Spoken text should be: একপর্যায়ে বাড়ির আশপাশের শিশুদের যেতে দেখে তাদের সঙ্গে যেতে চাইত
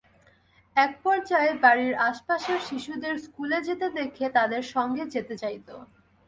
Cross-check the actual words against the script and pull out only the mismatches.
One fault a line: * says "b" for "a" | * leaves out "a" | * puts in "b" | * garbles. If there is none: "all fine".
* puts in "স্কুলে"